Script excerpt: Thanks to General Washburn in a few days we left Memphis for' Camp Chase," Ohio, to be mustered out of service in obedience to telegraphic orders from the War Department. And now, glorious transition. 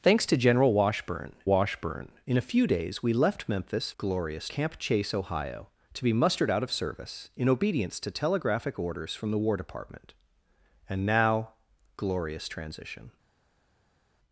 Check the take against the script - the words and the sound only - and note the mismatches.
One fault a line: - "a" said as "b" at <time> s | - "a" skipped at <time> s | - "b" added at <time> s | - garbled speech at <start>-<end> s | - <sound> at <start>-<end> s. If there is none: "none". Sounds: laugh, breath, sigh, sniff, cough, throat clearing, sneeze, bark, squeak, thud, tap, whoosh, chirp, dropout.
- "Washburn" added at 1.5 s
- "for" said as "glorious" at 4.0 s